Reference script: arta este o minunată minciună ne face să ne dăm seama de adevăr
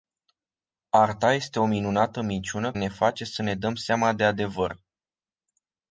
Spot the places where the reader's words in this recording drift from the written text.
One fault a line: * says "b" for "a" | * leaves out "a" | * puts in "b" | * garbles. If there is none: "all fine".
all fine